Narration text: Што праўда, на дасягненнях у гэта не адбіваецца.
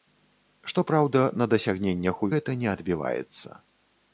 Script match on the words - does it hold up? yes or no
yes